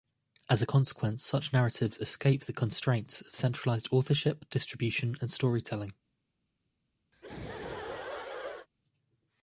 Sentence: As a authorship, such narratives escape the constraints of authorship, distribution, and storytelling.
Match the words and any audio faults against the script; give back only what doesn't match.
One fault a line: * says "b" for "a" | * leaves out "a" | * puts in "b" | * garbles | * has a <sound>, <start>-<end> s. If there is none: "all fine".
* says "consequence" for "authorship"
* puts in "centralized"
* has a laugh, 7.1-8.7 s